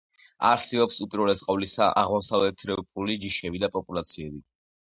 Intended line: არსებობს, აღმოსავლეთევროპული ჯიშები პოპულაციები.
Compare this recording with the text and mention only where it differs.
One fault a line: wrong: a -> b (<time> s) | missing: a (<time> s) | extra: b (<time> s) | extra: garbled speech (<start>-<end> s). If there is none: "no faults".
extra: უპირველეს ყოვლისა (1.1 s)
extra: და (3.6 s)